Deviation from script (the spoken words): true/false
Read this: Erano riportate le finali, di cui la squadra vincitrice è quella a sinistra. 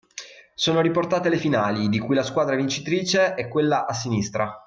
true